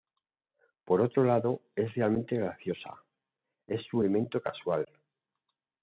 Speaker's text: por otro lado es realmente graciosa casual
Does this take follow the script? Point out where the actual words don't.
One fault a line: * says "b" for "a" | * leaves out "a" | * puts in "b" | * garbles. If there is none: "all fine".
* puts in "es su elemento"